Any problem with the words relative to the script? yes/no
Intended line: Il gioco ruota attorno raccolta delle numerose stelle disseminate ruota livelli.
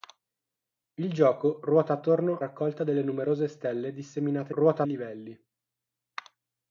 no